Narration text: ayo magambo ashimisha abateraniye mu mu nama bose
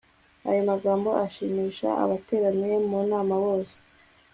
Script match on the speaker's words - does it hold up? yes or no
no